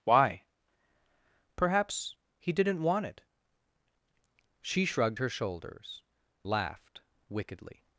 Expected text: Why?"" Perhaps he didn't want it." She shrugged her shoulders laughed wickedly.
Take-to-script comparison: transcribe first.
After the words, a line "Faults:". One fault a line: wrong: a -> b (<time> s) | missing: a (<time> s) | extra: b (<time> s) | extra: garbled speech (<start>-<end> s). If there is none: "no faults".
Why?"" Perhaps he didn't want it." She shrugged her shoulders laughed wickedly.
Faults:
no faults